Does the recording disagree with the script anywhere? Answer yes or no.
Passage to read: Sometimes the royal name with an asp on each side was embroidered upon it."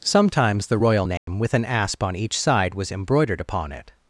no